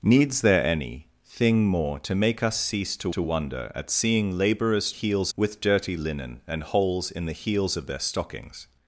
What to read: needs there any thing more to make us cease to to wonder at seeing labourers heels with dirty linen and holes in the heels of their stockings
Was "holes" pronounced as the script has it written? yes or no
yes